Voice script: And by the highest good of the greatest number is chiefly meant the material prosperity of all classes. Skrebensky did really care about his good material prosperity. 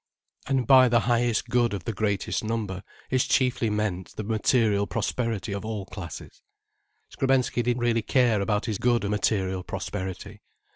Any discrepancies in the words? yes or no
no